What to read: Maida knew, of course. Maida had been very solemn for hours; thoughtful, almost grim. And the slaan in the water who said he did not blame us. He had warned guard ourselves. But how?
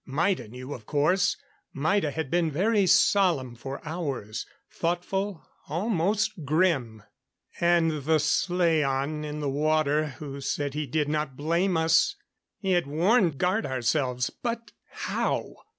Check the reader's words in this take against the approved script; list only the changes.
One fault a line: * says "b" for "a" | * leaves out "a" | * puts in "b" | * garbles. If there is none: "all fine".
all fine